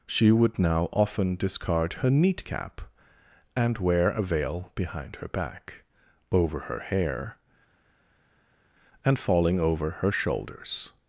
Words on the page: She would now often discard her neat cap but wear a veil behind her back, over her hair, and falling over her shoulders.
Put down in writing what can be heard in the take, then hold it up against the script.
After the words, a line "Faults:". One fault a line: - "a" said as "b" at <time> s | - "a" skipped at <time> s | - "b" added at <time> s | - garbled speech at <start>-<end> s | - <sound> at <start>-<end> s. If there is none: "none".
She would now often discard her neat cap and wear a veil behind her back, over her hair, and falling over her shoulders.
Faults:
- "but" said as "and" at 3.6 s